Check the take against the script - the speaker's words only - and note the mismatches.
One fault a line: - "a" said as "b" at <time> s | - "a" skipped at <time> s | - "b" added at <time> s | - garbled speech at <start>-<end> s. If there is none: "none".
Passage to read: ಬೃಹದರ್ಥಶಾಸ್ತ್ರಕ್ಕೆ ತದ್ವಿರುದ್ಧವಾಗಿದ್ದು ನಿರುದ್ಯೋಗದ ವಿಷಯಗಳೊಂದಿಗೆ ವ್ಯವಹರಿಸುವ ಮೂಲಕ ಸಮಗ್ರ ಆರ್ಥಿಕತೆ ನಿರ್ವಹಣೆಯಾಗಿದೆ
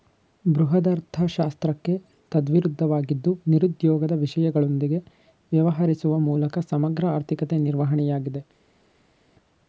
none